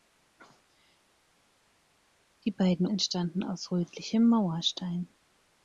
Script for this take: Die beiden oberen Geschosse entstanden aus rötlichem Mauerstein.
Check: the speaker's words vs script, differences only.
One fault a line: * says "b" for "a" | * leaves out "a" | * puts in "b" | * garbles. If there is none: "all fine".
* leaves out "oberen Geschosse"